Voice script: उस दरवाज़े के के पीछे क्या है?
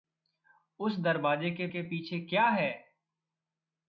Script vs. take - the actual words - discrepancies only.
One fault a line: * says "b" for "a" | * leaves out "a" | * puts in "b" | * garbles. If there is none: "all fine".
all fine